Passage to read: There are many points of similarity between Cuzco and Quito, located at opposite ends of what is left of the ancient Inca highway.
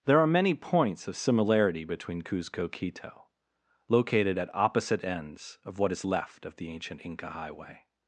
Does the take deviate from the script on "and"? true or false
true